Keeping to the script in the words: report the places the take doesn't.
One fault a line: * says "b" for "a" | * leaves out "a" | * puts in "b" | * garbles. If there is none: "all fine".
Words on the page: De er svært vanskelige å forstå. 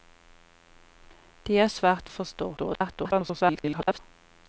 * leaves out "vanskelige"
* garbles